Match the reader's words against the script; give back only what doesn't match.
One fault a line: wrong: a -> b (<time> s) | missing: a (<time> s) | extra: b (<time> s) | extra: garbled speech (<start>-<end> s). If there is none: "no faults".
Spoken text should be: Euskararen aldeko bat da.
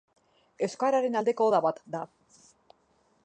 extra: oda (1.5 s)